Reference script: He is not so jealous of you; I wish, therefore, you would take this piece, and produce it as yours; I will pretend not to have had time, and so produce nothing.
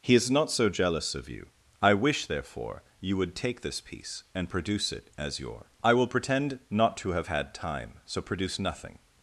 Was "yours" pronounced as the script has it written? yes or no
no